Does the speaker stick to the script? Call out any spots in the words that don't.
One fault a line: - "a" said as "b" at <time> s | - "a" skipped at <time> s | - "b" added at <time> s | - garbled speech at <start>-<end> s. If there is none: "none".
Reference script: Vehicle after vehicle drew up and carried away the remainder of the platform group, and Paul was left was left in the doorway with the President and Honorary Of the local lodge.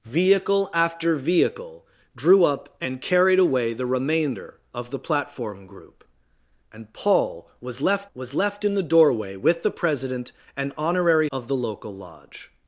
none